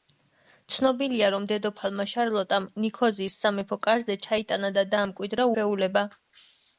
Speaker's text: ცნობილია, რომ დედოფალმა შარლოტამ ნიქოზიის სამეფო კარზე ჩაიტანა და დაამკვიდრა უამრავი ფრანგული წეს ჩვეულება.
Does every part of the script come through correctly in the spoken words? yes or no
no